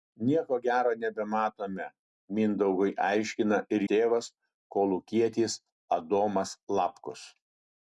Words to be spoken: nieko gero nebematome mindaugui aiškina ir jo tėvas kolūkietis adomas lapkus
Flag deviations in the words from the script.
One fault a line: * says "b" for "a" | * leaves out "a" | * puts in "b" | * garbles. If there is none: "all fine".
* leaves out "jo"